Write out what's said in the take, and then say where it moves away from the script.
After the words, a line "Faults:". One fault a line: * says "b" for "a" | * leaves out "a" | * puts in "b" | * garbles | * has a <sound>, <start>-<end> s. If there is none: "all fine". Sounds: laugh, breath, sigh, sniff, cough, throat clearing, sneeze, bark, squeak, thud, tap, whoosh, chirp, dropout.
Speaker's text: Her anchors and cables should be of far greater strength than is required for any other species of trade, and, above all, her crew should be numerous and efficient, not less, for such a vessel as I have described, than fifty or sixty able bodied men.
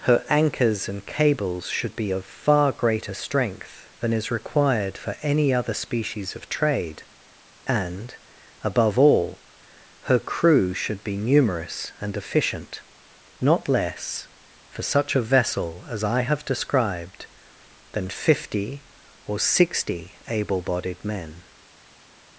Her anchors and cables should be of far greater strength than is required for any other species of trade, and, above all, her crew should be numerous and efficient, not less, for such a vessel as I have described, than fifty or sixty able bodied men.
Faults:
all fine